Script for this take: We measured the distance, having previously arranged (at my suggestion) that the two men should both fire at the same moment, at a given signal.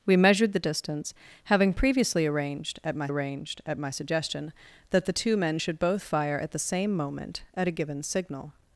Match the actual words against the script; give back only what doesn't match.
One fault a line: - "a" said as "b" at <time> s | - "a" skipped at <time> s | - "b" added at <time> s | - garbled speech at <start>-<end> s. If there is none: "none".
- "arranged at my" added at 3.1 s